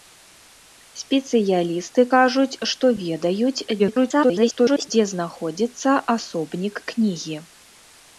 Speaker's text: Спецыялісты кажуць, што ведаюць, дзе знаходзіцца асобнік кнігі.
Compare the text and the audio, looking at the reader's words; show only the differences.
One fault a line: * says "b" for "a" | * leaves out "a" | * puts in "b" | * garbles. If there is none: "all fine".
* garbles